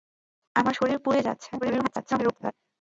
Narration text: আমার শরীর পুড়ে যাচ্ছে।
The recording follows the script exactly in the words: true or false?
false